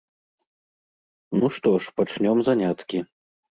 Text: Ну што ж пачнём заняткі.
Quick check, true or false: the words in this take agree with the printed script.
true